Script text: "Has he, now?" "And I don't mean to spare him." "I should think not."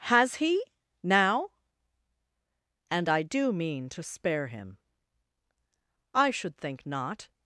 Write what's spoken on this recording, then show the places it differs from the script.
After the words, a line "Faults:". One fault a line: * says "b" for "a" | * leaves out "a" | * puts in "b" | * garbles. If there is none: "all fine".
"Has he, now?" "And I do mean to spare him." "I should think not."
Faults:
* says "do" for "don't"